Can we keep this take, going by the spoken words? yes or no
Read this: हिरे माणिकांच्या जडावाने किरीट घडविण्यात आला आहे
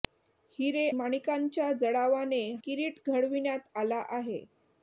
yes